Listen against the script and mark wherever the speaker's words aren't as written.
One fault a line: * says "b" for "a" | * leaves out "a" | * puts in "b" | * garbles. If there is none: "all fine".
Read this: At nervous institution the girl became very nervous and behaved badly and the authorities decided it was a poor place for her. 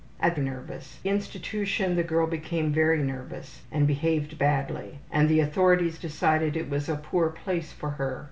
all fine